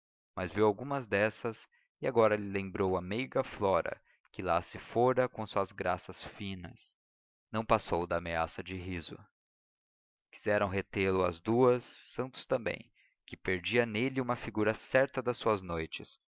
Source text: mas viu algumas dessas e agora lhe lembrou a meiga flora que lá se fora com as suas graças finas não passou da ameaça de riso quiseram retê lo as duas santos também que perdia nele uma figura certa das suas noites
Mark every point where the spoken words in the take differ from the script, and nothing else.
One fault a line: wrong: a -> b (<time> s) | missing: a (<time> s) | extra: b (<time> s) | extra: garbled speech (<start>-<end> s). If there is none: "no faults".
no faults